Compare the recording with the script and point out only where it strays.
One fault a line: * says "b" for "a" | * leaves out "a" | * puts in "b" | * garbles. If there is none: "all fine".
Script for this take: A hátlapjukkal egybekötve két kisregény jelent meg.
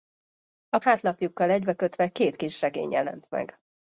all fine